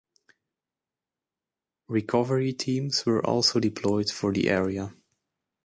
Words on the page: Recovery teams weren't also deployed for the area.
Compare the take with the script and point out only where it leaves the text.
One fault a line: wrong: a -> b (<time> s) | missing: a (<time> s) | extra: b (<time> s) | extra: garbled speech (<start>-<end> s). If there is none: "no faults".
wrong: weren't -> were (3.0 s)